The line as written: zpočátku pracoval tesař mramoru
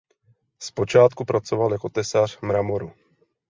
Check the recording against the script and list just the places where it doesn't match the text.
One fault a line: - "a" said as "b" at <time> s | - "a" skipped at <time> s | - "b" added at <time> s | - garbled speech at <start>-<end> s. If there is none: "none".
- "jako" added at 1.7 s